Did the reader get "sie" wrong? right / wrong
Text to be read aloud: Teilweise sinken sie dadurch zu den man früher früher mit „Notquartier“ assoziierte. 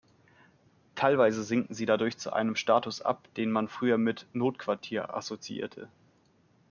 right